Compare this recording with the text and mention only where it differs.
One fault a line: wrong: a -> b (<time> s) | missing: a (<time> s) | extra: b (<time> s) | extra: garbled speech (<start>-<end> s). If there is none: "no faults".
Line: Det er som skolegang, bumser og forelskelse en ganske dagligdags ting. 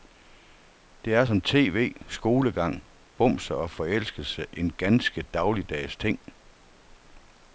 extra: tv (1.4 s)